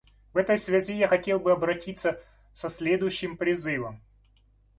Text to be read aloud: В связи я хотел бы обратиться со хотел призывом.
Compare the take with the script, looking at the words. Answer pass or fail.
fail